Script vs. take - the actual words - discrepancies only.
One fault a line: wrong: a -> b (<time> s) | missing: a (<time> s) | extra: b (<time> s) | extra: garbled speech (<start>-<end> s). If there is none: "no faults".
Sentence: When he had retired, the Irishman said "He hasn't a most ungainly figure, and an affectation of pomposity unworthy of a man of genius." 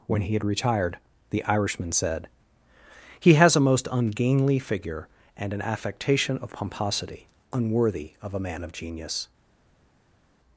wrong: hasn't -> has (3.4 s)